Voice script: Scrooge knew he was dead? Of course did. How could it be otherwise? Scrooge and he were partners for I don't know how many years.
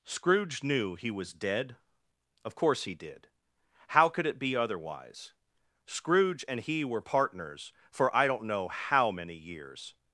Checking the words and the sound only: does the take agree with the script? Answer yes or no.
no